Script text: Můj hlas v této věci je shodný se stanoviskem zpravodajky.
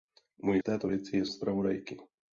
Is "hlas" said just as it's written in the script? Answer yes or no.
no